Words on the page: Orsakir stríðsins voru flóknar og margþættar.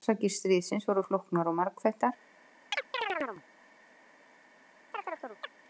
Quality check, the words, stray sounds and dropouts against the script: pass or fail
fail